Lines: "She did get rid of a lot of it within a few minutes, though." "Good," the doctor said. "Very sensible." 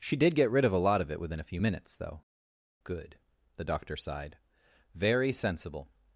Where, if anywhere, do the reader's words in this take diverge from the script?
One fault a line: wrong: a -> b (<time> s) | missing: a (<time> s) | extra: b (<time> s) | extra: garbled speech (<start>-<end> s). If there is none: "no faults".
wrong: said -> sighed (4.0 s)